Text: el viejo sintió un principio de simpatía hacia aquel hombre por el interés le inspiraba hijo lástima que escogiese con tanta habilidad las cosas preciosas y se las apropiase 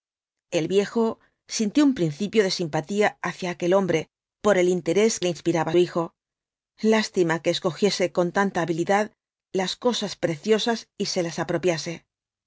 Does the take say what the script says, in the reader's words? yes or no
yes